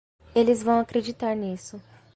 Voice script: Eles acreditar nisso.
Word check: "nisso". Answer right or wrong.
right